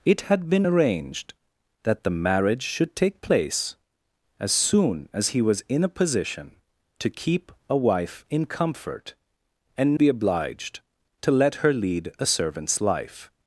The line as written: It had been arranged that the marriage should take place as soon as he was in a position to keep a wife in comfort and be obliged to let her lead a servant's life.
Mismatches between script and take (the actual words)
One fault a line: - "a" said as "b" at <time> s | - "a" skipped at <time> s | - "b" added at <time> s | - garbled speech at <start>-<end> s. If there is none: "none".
none